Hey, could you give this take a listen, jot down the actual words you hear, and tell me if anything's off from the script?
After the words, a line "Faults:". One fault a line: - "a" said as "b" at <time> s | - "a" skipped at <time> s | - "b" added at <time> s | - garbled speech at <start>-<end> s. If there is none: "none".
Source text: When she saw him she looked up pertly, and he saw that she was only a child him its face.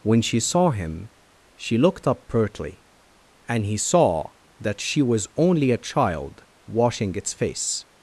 When she saw him she looked up pertly, and he saw that she was only a child washing its face.
Faults:
- "him" said as "washing" at 6.7 s